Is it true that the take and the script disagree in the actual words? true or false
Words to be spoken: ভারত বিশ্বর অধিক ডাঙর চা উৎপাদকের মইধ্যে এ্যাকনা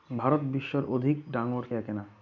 true